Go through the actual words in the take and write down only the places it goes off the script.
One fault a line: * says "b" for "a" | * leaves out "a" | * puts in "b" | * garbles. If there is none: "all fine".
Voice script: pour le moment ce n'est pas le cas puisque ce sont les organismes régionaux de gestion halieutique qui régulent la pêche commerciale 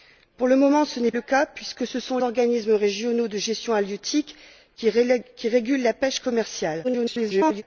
* leaves out "pas"
* leaves out "les"
* garbles